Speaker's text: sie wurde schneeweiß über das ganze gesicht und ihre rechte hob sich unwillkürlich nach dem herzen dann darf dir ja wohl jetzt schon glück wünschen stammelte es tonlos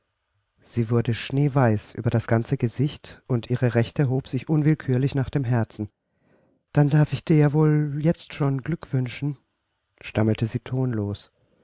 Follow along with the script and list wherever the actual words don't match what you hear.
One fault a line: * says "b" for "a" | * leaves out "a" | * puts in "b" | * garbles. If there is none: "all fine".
* puts in "ich"
* says "sie" for "es"